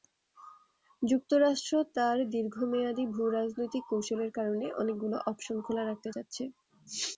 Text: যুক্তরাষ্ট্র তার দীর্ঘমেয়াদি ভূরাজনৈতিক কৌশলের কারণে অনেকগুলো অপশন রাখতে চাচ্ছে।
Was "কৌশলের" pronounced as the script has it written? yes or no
yes